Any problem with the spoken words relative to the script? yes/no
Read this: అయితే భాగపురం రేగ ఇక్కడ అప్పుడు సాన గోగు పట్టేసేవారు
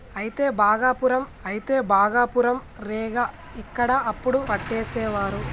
yes